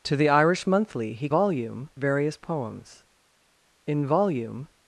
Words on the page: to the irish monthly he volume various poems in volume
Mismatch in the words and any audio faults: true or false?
false